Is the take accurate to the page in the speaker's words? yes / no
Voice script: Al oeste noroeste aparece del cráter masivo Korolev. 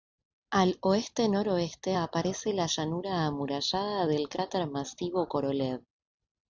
no